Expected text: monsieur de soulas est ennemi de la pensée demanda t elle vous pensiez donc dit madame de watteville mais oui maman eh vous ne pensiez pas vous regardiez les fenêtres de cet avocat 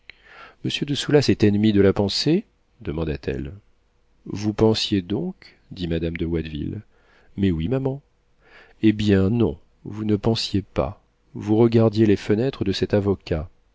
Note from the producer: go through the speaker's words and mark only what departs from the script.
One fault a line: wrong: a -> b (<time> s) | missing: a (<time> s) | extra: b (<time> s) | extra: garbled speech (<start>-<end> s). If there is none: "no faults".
extra: bien non (8.9 s)